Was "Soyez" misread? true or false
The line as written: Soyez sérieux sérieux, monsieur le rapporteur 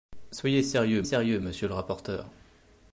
false